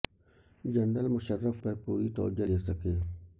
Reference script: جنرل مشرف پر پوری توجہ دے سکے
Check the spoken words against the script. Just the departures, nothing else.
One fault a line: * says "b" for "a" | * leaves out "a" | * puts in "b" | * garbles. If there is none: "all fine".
all fine